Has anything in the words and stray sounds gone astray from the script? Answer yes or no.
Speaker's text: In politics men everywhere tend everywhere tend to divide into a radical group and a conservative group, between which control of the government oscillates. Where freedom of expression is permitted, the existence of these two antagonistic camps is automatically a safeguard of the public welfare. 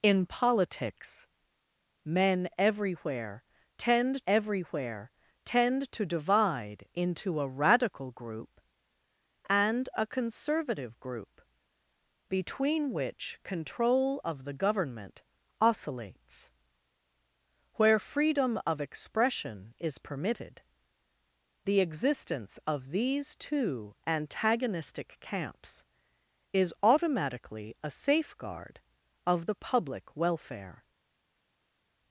no